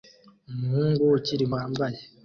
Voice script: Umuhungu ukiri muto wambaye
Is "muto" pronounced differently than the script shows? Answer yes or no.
yes